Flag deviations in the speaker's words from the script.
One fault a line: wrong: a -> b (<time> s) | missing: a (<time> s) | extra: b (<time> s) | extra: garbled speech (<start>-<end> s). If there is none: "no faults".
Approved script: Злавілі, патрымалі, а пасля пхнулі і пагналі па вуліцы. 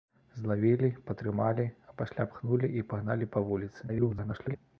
extra: garbled speech (3.9-4.6 s)